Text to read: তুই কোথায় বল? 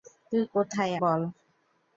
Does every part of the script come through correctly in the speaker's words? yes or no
yes